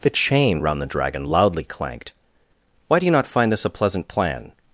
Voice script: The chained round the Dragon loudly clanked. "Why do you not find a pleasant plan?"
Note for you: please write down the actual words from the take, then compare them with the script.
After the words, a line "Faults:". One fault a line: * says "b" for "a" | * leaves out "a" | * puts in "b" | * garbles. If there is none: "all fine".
The chain round the Dragon loudly clanked. "Why do you not find this a pleasant plan?"
Faults:
* says "chain" for "chained"
* puts in "this"